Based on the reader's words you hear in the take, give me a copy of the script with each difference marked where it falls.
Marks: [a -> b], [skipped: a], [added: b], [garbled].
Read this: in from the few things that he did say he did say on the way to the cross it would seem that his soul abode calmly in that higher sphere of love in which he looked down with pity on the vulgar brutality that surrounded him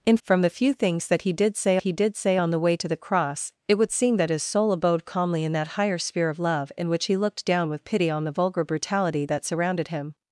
in from the few things that he did say he did say on the way to the cross it would seem that his soul abode calmly in that higher sphere of love in which he looked down with pity on the vulgar brutality that surrounded him